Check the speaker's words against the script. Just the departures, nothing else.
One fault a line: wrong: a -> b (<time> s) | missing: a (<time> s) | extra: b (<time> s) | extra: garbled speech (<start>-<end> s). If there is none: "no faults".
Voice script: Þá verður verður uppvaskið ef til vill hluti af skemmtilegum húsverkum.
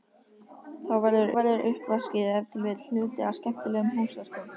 no faults